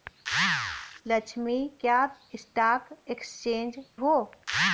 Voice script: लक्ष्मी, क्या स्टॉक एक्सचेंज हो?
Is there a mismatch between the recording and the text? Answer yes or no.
no